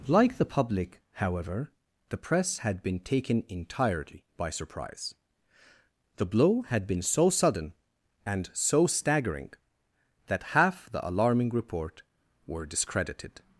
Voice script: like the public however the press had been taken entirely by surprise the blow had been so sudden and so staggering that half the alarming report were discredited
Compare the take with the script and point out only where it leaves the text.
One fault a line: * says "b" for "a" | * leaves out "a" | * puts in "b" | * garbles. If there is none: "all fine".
all fine